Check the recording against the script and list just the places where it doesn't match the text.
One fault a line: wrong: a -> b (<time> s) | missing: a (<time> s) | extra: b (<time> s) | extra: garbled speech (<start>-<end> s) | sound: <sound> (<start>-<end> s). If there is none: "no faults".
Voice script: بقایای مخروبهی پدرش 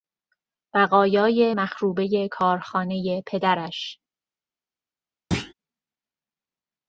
extra: کارخانهی (2.3 s)
sound: thud (5.3-5.5 s)